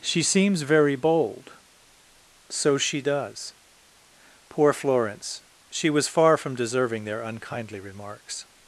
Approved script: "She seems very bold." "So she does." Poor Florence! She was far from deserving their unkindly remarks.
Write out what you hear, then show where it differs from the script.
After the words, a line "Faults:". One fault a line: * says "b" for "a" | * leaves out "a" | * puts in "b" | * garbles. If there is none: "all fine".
"She seems very bold." "So she does." Poor Florence! She was far from deserving their unkindly remarks.
Faults:
all fine